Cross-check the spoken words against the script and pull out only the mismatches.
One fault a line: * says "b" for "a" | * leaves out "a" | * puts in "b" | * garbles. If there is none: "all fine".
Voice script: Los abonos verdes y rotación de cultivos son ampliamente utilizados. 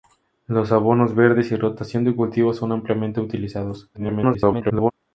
* garbles